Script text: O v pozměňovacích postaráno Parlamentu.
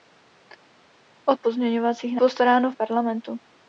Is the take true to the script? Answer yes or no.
yes